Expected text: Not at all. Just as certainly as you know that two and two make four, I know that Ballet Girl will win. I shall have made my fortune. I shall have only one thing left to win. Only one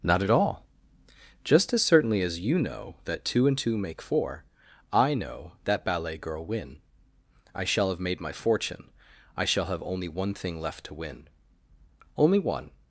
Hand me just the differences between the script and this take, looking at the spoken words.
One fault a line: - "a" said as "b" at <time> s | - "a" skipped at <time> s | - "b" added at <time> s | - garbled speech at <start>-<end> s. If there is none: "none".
- "will" skipped at 6.5 s